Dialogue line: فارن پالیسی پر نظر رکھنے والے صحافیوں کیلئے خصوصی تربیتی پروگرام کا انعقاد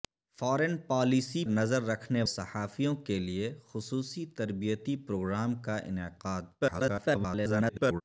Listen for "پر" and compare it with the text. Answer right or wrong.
wrong